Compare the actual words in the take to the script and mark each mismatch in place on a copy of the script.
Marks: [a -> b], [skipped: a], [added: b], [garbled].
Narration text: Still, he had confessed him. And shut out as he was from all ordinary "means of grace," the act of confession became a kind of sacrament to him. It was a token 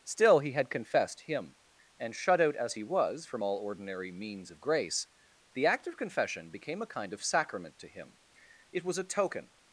Still, he had confessed him. And shut out as he was from all ordinary "means of grace," the act of confession became a kind of sacrament to him. It was a token